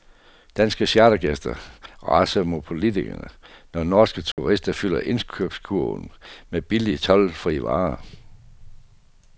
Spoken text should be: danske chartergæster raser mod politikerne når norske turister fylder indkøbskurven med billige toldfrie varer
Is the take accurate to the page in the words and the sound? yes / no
no